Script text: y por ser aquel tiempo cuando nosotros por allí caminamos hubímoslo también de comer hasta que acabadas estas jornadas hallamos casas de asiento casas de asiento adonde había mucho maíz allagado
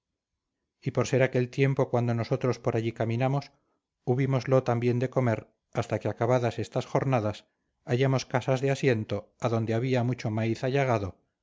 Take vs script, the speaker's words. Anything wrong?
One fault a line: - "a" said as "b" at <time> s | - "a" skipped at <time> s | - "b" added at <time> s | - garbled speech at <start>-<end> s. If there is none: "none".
- "casas de asiento" skipped at 9.3 s